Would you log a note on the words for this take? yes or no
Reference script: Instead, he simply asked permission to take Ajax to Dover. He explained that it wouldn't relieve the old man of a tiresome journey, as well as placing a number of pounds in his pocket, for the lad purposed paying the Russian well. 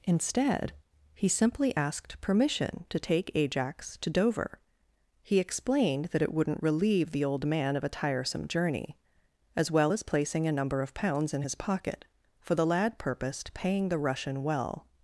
no